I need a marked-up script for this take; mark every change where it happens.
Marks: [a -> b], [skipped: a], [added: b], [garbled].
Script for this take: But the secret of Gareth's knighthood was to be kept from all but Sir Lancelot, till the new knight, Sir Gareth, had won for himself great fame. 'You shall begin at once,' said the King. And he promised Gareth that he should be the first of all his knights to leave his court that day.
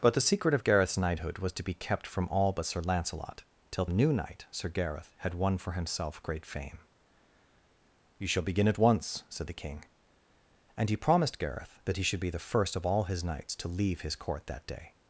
But the secret of Gareth's knighthood was to be kept from all but Sir Lancelot, till [skipped: the] new knight, Sir Gareth, had won for himself great fame. 'You shall begin at once,' said the King. And he promised Gareth that he should be the first of all his knights to leave his court that day.